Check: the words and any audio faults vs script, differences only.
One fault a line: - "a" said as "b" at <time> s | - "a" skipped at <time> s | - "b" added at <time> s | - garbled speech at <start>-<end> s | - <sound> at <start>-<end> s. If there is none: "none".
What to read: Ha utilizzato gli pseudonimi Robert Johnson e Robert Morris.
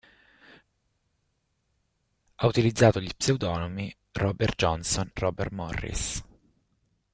- "e" skipped at 5.1 s